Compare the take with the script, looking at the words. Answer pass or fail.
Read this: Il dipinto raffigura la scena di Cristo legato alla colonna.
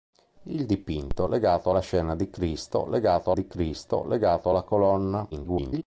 fail